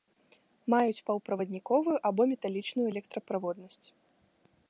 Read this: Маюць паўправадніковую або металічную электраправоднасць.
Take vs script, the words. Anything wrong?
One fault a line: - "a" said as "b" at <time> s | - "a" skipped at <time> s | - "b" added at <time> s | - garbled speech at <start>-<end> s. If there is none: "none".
none